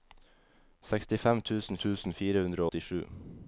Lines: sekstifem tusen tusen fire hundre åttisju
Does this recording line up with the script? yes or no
yes